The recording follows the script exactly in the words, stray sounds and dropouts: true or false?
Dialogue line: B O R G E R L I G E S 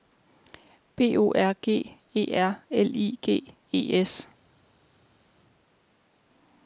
true